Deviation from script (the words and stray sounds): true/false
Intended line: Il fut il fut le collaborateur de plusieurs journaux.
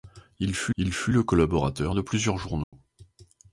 true